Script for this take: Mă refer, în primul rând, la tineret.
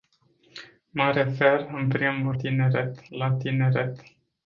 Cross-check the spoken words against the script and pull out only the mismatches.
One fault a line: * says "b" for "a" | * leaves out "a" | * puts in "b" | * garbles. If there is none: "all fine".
* says "tineret" for "rând"